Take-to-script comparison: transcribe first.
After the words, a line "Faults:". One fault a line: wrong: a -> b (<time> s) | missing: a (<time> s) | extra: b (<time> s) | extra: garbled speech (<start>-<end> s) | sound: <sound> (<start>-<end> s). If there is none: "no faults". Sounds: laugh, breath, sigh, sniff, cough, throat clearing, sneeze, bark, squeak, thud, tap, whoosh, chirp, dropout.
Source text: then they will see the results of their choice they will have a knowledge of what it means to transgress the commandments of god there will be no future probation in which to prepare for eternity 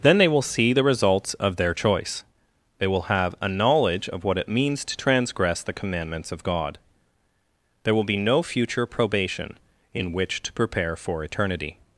then they will see the results of their choice they will have a knowledge of what it means to transgress the commandments of god there will be no future probation in which to prepare for eternity
Faults:
no faults